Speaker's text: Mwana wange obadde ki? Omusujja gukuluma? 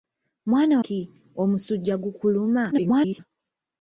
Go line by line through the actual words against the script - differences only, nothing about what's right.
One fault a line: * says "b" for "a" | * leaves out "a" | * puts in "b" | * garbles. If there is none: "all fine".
* leaves out "wange obadde"
* garbles